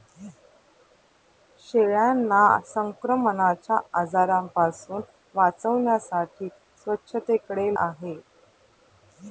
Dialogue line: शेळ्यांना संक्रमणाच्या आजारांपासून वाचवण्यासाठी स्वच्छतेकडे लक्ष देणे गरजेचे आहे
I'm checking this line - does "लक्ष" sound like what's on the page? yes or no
no